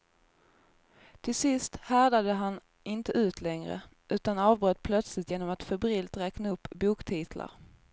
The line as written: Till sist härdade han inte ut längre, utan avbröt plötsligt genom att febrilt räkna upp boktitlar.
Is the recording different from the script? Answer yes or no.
no